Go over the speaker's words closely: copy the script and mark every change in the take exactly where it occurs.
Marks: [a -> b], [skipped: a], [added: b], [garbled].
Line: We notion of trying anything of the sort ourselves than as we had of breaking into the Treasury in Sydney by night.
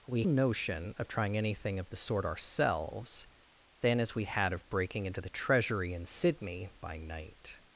We notion of trying anything of the sort ourselves than as we had of breaking into the Treasury in Sydney by night.